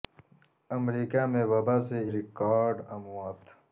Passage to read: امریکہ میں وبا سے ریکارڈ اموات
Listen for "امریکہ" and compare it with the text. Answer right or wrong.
right